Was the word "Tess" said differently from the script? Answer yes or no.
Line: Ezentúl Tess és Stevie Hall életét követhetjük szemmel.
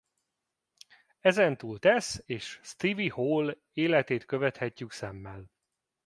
no